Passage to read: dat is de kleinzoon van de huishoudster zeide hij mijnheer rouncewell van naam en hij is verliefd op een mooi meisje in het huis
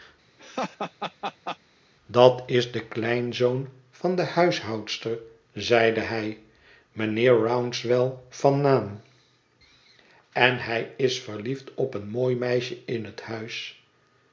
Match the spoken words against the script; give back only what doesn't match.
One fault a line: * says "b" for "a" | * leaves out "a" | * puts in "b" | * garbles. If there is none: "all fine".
all fine